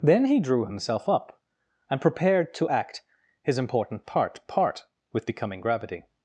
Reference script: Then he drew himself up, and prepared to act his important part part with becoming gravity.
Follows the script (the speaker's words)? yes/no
yes